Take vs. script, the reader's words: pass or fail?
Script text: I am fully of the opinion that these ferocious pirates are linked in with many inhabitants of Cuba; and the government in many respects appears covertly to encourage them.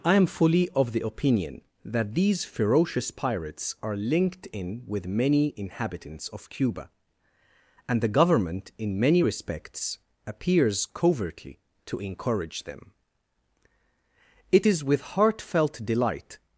fail